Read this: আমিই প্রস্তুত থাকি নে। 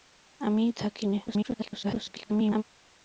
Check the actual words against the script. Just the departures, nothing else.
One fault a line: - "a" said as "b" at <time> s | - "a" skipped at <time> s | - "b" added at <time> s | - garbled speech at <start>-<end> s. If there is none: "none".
- "প্রস্তুত" skipped at 0.7 s
- garbled speech at 1.3-2.6 s